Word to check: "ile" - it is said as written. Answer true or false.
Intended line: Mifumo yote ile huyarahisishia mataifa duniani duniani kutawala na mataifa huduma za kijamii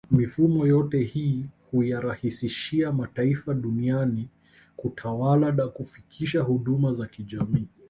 false